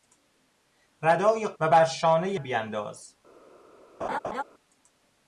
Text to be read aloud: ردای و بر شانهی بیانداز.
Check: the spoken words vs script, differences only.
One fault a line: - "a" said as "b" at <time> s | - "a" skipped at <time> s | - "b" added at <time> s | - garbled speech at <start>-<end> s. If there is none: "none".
none